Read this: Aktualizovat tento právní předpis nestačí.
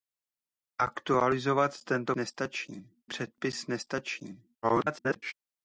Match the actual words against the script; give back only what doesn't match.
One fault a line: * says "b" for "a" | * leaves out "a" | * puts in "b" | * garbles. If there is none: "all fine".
* says "nestačí" for "právní"
* garbles